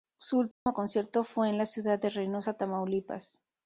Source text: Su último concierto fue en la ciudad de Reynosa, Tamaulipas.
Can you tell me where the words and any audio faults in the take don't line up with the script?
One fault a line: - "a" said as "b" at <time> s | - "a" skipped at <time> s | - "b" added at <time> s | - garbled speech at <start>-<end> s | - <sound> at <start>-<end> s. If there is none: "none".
- dropout at 0.5-0.7 s